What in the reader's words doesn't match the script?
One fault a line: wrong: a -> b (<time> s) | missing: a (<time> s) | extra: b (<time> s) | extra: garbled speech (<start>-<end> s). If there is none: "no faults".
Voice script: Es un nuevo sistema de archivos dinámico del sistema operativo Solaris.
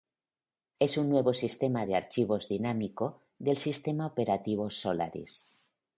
no faults